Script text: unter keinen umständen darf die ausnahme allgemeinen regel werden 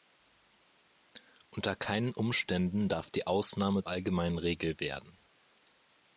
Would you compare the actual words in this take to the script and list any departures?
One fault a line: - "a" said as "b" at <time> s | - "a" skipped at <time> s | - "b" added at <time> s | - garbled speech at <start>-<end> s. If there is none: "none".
none